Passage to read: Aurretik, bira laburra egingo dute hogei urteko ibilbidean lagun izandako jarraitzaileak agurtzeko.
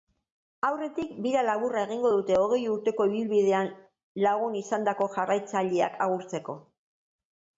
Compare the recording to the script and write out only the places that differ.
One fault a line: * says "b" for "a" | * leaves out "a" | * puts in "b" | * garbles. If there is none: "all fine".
all fine